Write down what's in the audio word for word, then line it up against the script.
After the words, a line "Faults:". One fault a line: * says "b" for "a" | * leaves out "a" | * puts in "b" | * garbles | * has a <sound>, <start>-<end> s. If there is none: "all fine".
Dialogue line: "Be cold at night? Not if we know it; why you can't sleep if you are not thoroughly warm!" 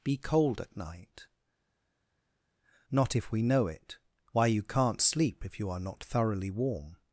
"Be cold at night? Not if we know it; why you can't sleep if you are not thoroughly warm!"
Faults:
all fine